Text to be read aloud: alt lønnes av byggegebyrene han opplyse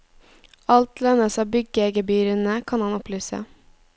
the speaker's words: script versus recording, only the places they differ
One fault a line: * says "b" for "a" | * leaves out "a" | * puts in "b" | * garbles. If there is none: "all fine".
* puts in "kan"